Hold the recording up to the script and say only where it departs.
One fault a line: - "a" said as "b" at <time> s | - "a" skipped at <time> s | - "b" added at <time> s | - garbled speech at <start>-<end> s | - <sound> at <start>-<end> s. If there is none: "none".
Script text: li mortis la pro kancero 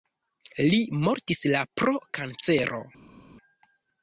none